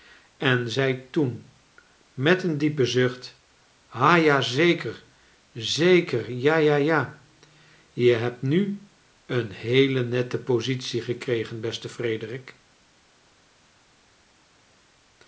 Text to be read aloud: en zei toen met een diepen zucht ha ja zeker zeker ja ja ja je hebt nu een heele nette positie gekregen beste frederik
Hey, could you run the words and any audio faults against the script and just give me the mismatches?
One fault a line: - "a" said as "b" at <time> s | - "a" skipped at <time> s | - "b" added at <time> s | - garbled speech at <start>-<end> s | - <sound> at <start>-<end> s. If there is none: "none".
none